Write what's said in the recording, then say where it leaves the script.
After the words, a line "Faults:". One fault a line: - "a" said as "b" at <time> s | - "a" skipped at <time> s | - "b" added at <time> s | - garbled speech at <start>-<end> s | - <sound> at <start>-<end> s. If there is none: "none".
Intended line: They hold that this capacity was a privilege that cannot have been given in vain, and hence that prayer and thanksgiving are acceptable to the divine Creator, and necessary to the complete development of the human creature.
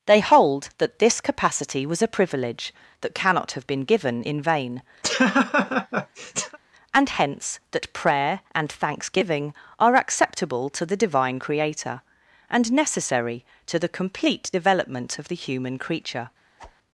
They hold that this capacity was a privilege that cannot have been given in vain, and hence that prayer and thanksgiving are acceptable to the divine Creator, and necessary to the complete development of the human creature.
Faults:
- laugh at 5.0-6.6 s
- whoosh at 16.6-16.8 s